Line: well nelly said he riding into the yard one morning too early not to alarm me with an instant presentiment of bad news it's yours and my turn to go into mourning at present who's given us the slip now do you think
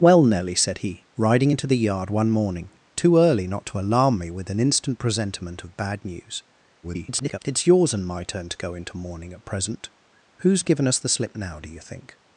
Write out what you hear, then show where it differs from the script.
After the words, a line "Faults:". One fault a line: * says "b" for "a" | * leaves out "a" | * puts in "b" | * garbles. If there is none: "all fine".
well nelly said he riding into the yard one morning too early not to alarm me with an instant presentiment of bad news [garbled] it's yours and my turn to go into mourning at present who's given us the slip now do you think
Faults:
* garbles